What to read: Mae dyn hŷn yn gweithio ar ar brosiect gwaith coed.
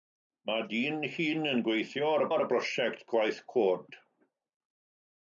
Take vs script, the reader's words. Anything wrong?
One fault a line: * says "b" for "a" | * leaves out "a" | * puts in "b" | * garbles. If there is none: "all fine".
all fine